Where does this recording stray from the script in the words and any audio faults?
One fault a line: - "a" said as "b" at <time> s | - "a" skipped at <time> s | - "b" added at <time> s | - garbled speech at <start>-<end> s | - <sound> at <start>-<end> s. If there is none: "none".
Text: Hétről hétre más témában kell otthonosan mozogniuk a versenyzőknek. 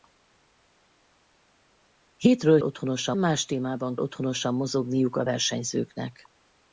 - "hétre" said as "otthonosan" at 2.6 s
- "kell" skipped at 4.0 s